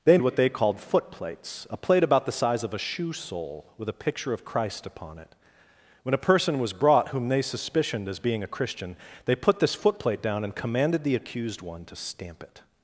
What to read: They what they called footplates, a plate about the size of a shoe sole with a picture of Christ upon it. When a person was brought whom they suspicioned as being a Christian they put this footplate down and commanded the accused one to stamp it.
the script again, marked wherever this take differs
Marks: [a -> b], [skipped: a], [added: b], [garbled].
They what they called footplates, a plate about the size of a shoe sole with a picture of Christ upon it. When a person was brought whom they suspicioned as being a Christian they put this footplate down and commanded the accused one to stamp it.